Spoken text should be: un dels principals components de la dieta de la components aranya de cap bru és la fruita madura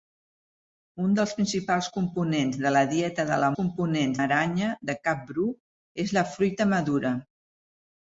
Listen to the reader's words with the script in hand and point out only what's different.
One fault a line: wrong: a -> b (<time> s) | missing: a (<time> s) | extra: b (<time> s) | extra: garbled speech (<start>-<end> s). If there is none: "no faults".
no faults